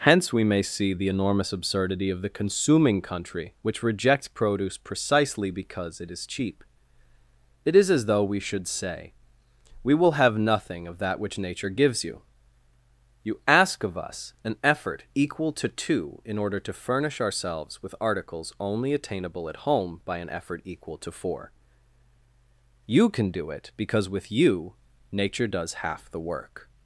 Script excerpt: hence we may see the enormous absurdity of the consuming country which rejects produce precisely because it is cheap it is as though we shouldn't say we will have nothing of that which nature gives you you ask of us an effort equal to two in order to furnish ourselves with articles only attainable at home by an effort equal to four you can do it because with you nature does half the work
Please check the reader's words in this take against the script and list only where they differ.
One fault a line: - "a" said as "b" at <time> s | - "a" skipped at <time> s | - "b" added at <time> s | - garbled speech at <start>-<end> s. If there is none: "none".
- "shouldn't" said as "should" at 8.4 s